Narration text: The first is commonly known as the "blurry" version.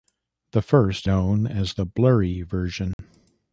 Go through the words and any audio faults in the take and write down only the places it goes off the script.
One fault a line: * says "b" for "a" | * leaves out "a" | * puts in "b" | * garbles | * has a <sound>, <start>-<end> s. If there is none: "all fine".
* leaves out "is commonly"
* has a dropout, 2.9-3.0 s